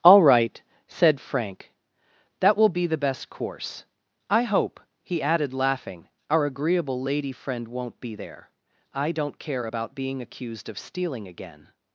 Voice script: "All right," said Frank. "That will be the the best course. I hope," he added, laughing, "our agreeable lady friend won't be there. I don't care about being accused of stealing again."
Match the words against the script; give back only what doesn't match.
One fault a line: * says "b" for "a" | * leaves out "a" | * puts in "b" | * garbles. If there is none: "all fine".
* leaves out "the"